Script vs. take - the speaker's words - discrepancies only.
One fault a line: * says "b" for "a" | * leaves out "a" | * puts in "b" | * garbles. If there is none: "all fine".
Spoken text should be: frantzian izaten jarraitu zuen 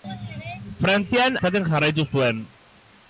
all fine